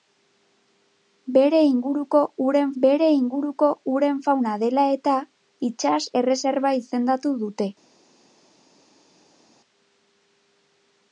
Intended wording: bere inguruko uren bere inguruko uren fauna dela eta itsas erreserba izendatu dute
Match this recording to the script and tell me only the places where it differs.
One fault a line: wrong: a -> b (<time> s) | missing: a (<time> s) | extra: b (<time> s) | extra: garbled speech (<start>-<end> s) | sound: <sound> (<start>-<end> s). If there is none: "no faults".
no faults